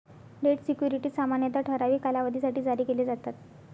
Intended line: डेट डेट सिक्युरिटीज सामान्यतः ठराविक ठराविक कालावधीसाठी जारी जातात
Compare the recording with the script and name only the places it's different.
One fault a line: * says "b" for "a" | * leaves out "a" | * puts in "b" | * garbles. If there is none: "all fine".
* leaves out "डेट"
* leaves out "ठराविक"
* puts in "केले"